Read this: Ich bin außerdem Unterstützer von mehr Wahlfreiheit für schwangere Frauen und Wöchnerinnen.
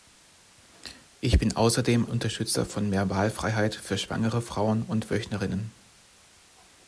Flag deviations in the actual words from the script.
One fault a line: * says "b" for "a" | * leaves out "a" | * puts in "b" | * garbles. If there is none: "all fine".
all fine